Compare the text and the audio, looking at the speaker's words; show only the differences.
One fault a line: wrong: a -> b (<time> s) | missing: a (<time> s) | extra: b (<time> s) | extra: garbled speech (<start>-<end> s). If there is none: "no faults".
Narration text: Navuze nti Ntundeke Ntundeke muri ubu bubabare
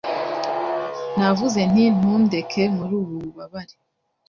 missing: Ntundeke (2.6 s)